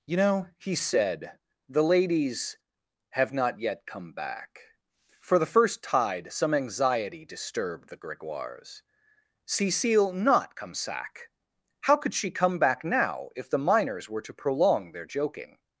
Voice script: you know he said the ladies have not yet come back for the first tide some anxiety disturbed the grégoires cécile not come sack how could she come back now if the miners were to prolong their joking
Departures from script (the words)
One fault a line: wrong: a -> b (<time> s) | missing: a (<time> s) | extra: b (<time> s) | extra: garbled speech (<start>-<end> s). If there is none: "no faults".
no faults